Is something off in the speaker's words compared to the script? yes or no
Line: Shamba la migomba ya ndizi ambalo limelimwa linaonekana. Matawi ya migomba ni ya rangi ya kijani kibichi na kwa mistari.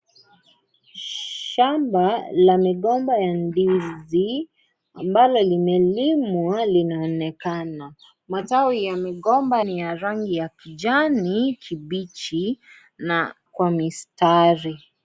no